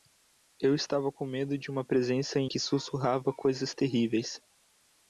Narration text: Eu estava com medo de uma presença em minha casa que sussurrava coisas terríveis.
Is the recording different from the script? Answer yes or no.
yes